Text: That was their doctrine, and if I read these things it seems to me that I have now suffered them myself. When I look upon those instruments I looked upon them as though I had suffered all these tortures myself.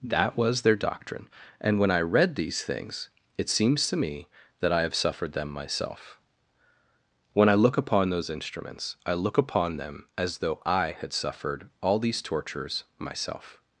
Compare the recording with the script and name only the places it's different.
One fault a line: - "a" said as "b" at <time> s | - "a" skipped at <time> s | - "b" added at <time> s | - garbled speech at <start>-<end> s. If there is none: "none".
- "if" said as "when" at 1.8 s
- "now" skipped at 4.9 s
- "looked" said as "look" at 9.1 s